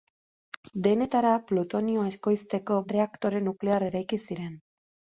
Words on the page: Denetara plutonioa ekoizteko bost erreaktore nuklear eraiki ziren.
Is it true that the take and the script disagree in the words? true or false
true